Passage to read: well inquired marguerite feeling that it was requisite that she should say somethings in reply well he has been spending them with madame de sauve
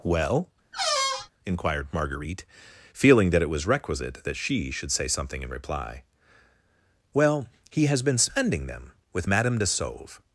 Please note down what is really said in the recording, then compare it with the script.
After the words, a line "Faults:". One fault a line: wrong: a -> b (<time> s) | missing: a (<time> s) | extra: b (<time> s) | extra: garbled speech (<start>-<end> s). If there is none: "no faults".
well inquired marguerite feeling that it was requisite that she should say something in reply well he has been spending them with madame de sauve
Faults:
wrong: somethings -> something (5.1 s)